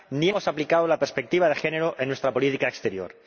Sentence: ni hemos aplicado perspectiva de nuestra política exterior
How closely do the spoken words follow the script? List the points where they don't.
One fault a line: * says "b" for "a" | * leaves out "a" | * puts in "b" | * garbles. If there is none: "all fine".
* puts in "la"
* puts in "género en"